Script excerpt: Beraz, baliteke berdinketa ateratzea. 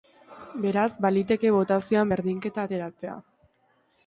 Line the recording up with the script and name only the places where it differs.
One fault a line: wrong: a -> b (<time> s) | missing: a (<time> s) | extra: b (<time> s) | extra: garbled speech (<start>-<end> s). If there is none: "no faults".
extra: botazioan (1.6 s)